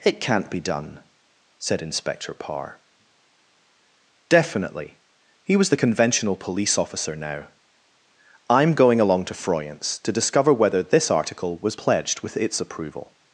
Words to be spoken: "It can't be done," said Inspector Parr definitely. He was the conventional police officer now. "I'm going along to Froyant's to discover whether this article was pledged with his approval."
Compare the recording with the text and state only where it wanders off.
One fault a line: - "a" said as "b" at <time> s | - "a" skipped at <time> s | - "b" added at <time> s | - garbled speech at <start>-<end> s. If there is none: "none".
- "his" said as "its" at 12.3 s